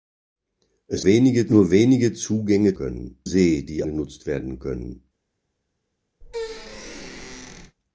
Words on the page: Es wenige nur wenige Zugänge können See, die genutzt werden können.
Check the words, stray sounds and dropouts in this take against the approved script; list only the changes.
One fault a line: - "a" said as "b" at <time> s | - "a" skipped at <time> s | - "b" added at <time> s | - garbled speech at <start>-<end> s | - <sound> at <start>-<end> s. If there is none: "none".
- squeak at 6.2-7.8 s